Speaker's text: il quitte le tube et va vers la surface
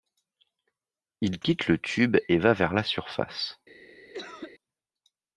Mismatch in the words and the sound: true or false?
true